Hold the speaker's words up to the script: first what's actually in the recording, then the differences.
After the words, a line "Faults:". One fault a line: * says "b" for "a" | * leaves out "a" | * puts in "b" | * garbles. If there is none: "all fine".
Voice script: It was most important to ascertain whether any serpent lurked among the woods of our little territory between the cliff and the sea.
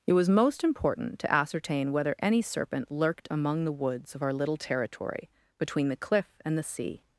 It was most important to ascertain whether any serpent lurked among the woods of our little territory between the cliff and the sea.
Faults:
all fine